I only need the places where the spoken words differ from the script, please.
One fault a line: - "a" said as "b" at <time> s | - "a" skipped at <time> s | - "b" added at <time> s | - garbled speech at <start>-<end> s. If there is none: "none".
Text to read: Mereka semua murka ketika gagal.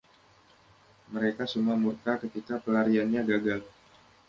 - "pelariannya" added at 2.6 s